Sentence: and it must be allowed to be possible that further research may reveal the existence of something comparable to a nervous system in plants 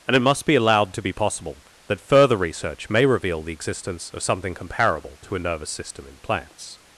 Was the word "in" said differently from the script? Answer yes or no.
no